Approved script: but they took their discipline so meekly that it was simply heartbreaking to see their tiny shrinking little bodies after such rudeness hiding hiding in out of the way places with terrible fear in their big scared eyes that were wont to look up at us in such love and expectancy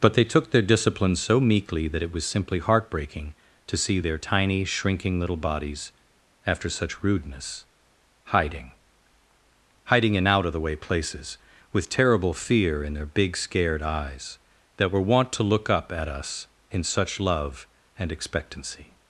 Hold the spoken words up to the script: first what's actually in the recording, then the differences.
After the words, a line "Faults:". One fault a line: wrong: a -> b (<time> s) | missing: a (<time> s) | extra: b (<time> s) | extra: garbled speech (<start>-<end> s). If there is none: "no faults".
but they took their discipline so meekly that it was simply heartbreaking to see their tiny shrinking little bodies after such rudeness hiding hiding in out of the way places with terrible fear in their big scared eyes that were wont to look up at us in such love and expectancy
Faults:
no faults